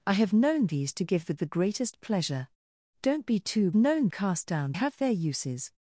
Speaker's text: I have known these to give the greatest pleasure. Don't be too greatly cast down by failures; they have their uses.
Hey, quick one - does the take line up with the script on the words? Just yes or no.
no